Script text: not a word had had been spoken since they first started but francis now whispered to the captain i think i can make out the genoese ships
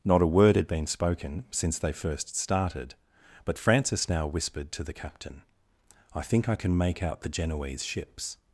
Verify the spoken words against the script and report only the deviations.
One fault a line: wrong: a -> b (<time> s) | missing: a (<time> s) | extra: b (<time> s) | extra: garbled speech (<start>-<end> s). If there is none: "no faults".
missing: had (0.7 s)